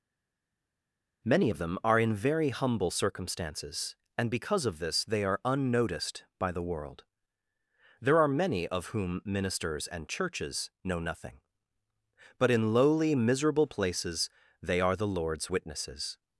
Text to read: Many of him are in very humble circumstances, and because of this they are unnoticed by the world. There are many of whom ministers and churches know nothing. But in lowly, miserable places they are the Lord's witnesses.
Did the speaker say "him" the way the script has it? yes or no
no